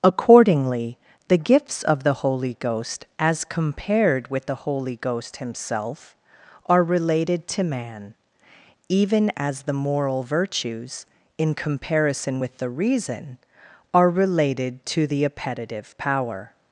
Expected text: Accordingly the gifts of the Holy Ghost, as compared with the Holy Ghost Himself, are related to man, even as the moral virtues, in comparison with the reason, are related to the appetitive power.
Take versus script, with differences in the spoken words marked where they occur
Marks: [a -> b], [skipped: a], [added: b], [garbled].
Accordingly the gifts of the Holy Ghost, as compared with the Holy Ghost Himself, are related to man, even as the moral virtues, in comparison with the reason, are related to the appetitive power.